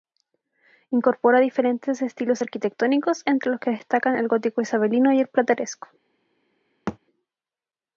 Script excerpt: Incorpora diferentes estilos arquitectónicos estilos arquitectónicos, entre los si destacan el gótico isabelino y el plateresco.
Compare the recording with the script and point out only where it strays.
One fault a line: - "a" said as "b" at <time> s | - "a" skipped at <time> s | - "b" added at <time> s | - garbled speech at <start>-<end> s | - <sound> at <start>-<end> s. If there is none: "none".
- "estilos arquitectónicos" skipped at 3.2 s
- "si" said as "que" at 3.6 s
- thud at 6.9-7.0 s